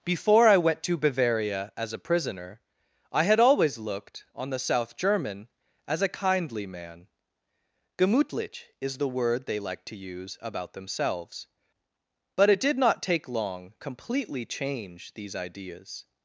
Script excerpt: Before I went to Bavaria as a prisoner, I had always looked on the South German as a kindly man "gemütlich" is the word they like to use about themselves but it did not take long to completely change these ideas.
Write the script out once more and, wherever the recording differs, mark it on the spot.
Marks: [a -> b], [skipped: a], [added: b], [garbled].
Before I went to Bavaria as a prisoner, I had always looked on the South German as a kindly man "gemütlich" is the word they like to use about themselves but it did not take long [skipped: to] completely change these ideas.